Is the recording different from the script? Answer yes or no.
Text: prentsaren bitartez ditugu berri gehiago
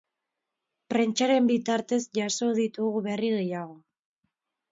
yes